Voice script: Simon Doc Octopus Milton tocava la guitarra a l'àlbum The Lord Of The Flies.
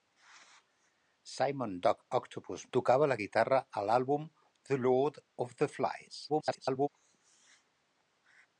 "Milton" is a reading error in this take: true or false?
true